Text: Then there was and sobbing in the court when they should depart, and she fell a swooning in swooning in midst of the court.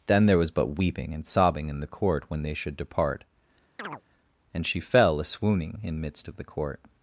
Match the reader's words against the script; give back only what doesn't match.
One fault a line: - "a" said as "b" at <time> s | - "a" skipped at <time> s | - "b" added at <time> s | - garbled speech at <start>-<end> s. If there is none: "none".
- "but weeping" added at 0.5 s
- "swooning in" skipped at 6.0 s